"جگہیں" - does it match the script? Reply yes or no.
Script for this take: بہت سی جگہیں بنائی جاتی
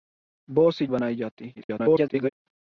no